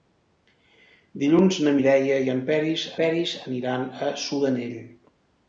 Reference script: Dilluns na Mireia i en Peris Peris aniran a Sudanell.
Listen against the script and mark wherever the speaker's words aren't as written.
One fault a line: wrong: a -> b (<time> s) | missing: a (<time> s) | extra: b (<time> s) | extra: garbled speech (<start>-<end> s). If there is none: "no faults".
no faults